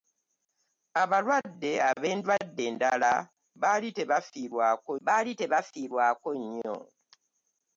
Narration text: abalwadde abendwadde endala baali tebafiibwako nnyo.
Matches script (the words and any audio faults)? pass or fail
fail